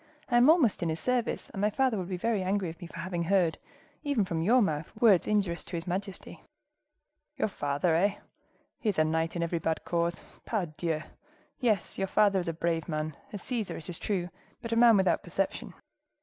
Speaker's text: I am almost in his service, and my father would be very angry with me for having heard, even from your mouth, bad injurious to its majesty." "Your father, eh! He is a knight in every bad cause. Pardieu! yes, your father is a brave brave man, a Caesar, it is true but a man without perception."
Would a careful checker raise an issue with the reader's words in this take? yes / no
yes